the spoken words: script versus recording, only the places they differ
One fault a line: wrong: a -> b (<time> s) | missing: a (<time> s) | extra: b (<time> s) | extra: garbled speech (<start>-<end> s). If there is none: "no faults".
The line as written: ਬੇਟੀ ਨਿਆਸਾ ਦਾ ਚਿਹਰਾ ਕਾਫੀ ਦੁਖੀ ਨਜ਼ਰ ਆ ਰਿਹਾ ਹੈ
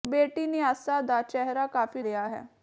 missing: ਦੁਖੀ ਨਜ਼ਰ ਆ (2.0 s)